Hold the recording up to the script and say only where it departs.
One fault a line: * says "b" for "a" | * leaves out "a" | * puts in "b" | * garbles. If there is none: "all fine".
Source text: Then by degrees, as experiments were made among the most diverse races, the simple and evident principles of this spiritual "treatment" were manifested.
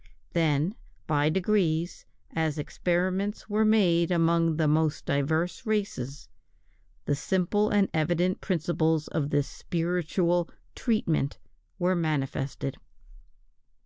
all fine